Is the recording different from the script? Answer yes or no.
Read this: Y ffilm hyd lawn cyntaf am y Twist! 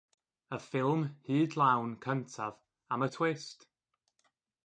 no